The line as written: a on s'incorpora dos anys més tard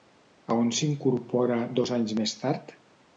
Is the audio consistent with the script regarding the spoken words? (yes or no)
yes